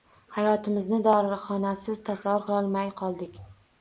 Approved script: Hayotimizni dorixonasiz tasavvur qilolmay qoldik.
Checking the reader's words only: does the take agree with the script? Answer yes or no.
yes